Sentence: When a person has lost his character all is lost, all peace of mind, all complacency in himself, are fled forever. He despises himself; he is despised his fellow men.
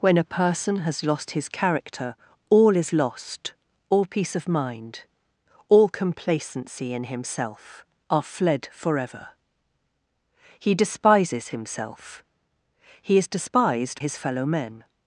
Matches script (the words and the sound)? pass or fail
pass